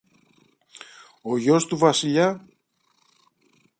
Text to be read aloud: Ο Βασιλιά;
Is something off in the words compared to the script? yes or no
yes